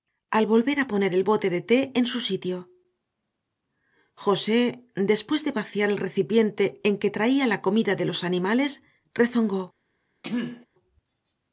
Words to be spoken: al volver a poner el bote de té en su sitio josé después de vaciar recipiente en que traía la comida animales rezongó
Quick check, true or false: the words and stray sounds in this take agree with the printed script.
false